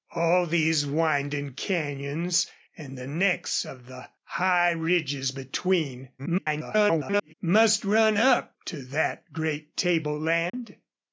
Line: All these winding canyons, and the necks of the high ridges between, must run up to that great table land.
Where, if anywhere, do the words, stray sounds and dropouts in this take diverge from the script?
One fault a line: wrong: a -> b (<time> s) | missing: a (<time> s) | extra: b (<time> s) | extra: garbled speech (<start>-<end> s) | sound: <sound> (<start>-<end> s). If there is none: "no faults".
extra: garbled speech (6.2-7.3 s)
sound: dropout (10.5-10.5 s)